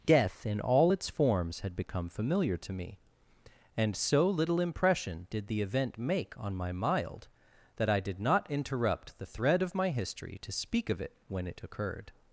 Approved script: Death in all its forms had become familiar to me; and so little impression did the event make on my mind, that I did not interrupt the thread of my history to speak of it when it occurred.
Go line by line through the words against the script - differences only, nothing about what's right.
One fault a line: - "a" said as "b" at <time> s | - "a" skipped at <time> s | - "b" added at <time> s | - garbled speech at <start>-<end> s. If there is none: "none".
- "mind" said as "mild" at 6.7 s